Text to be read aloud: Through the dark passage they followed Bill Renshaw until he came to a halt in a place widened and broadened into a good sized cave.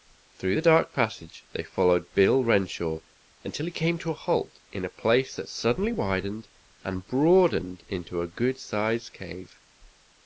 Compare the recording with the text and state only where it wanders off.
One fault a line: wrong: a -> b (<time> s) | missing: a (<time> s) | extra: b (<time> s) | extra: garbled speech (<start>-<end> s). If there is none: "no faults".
extra: that suddenly (5.4 s)